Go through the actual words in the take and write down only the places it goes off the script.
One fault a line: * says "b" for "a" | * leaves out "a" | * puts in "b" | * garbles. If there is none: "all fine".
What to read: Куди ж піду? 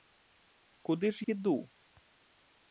all fine